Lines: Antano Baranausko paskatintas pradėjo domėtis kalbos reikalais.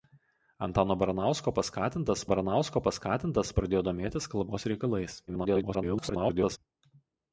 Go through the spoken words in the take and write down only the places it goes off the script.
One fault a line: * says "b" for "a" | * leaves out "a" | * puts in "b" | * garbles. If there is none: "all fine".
* puts in "Baranausko paskatintas"
* garbles